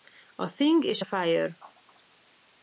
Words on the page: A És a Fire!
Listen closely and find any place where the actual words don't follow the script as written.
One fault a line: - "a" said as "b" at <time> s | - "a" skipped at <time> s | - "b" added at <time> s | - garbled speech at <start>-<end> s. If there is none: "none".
- "Thing" added at 0.5 s